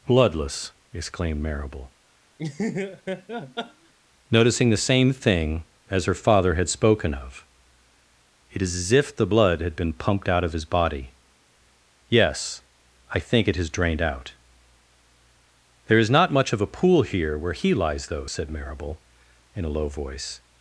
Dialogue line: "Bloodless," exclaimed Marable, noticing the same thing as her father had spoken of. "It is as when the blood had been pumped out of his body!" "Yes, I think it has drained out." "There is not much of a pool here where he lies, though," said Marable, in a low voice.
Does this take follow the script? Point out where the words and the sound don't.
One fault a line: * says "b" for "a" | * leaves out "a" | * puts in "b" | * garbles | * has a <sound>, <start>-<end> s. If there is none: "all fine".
* has a laugh, 2.4-3.9 s
* says "if" for "when"